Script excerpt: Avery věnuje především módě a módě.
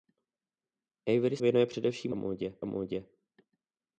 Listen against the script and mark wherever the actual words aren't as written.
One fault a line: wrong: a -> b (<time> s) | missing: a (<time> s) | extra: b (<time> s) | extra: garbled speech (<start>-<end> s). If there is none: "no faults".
no faults